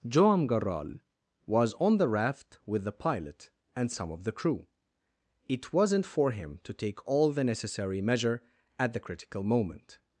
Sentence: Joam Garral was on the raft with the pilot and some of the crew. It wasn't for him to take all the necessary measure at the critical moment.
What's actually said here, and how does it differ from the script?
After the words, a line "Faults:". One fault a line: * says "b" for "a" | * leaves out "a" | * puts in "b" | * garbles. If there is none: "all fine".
Joam Garral was on the raft with the pilot and some of the crew. It wasn't for him to take all the necessary measure at the critical moment.
Faults:
all fine